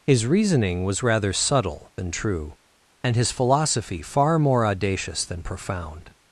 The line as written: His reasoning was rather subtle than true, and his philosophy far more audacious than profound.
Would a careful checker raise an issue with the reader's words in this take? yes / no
no